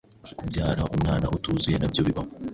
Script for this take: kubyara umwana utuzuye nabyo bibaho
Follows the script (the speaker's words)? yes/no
yes